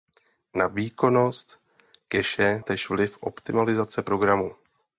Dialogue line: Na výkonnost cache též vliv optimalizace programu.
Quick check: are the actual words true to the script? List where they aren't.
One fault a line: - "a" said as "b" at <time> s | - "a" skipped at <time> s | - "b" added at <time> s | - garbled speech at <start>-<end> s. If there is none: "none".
none